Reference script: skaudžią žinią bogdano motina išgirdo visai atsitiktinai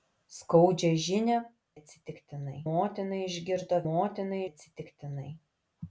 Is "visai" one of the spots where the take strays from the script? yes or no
yes